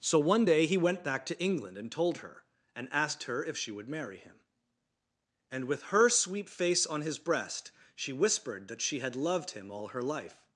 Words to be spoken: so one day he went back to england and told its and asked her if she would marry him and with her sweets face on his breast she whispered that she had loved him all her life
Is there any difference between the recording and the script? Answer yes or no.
yes